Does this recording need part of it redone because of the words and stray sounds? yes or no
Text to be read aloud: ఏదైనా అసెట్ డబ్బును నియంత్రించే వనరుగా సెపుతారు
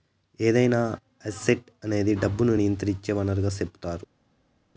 yes